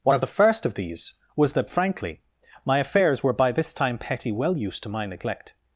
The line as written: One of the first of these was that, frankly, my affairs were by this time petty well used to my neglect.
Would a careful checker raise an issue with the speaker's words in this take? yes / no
no